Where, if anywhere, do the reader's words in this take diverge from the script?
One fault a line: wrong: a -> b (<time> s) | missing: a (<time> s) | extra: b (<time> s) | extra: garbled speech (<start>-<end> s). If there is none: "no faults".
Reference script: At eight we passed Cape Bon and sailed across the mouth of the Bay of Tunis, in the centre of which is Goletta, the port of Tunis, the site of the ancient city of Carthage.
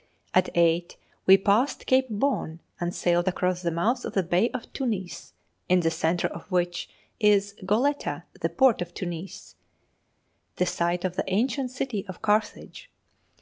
no faults